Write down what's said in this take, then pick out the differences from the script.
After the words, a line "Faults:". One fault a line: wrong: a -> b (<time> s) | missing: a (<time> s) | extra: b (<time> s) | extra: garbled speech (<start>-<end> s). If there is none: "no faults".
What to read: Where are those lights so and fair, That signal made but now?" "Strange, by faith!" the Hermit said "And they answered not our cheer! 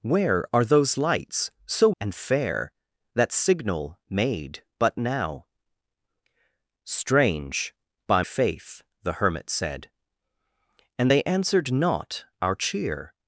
Where are those lights so and fair, That signal made but now?" "Strange, by faith!" the Hermit said "And they answered not our cheer!
Faults:
no faults